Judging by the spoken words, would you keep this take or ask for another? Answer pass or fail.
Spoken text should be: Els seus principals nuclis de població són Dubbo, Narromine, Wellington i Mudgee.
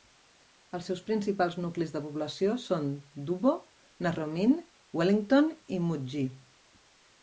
pass